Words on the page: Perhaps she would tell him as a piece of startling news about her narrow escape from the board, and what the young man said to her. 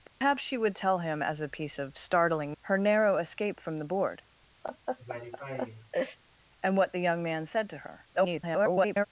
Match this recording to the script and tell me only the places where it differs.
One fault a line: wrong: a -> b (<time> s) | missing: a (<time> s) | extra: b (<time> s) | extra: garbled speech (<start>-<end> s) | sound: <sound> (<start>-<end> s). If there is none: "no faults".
sound: dropout (0.1-0.2 s)
missing: news about (2.6 s)
sound: laugh (4.6-6.2 s)
extra: garbled speech (8.1-9.1 s)